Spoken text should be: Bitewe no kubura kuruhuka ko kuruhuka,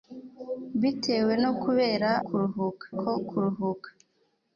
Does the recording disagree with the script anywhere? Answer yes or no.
no